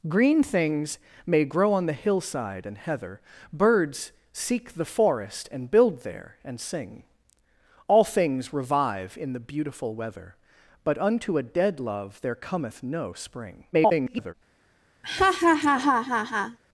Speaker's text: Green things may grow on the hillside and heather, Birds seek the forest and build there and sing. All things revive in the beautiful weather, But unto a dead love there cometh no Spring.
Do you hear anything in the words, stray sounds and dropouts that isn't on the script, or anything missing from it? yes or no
yes